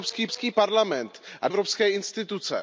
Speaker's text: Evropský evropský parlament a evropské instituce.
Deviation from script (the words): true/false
false